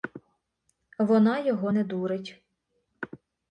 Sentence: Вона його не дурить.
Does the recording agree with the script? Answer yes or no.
yes